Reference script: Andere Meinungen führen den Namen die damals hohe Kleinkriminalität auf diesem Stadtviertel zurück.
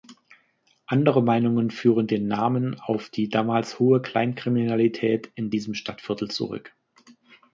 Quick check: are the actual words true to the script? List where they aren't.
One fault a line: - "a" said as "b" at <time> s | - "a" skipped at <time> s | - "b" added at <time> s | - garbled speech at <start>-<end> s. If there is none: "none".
- "auf" added at 2.8 s
- "auf" said as "in" at 5.3 s